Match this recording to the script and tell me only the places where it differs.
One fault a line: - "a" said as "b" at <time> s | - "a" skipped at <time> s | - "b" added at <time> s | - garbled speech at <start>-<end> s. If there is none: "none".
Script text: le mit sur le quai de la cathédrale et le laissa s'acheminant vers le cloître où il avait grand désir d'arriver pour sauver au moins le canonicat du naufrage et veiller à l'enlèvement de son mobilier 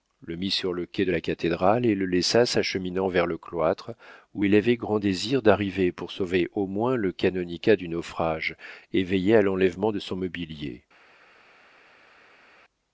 none